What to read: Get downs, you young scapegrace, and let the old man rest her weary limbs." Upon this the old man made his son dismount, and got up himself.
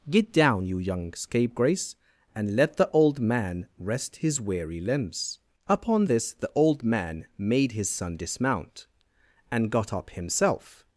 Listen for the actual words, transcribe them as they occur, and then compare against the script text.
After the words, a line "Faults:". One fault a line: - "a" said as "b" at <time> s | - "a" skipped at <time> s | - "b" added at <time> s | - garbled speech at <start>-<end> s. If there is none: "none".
Get down, you young scapegrace, and let the old man rest his weary limbs." Upon this the old man made his son dismount, and got up himself.
Faults:
- "downs" said as "down" at 0.3 s
- "her" said as "his" at 4.2 s